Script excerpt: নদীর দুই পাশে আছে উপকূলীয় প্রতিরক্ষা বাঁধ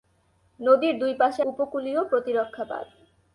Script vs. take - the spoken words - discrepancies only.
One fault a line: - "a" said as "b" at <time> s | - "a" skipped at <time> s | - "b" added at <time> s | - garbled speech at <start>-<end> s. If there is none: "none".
- "আছে" skipped at 1.4 s